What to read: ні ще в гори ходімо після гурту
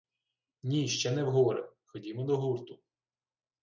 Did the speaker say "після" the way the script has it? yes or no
no